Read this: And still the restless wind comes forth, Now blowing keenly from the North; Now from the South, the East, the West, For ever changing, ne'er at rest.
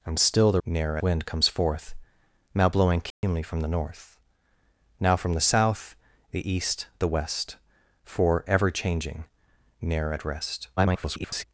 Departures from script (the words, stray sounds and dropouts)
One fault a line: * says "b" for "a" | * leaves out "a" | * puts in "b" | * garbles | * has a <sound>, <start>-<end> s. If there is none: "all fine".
* says "ne'er" for "restless"
* has a dropout, 3.1-3.2 s
* garbles